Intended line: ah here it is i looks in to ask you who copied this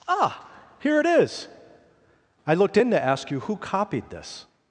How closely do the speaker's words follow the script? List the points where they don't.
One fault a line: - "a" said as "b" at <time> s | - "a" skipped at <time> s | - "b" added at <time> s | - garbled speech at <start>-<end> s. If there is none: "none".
- "looks" said as "looked" at 2.5 s